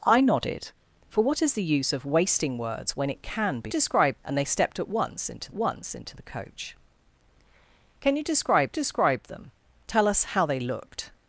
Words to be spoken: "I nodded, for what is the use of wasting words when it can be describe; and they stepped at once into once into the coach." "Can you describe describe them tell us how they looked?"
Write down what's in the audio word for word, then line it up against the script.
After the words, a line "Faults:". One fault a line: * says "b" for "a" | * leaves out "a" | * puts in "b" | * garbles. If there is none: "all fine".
"I nodded, for what is the use of wasting words when it can be describe; and they stepped at once into once into the coach." "Can you describe describe them tell us how they looked?"
Faults:
all fine